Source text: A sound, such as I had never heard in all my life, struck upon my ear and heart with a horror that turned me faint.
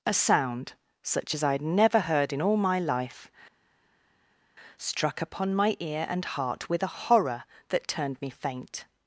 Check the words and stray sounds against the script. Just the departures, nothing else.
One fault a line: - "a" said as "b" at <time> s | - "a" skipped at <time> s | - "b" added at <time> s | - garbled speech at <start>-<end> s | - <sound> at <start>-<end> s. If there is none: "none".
none